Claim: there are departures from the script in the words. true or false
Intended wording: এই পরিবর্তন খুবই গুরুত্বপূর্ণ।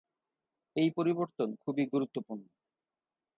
false